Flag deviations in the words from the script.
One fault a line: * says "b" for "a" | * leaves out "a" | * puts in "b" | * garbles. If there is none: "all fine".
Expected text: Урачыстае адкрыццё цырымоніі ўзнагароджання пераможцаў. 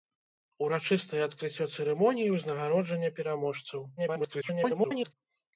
* garbles